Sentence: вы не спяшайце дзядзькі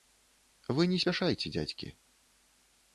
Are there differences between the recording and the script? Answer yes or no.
no